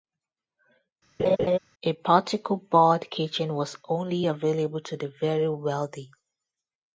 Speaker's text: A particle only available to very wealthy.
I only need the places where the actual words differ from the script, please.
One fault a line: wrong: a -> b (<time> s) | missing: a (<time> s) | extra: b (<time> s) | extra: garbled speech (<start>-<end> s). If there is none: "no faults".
extra: board kitchen was (2.5 s)
extra: the (5.0 s)